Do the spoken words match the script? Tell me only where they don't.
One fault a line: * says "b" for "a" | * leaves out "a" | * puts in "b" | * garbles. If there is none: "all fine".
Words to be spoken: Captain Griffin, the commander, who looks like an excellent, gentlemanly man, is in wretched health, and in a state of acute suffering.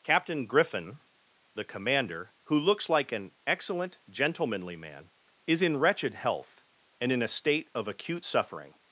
all fine